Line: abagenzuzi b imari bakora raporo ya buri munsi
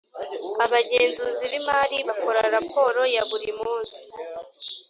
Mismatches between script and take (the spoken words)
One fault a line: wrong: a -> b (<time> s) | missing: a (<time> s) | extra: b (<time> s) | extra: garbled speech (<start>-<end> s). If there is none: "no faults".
no faults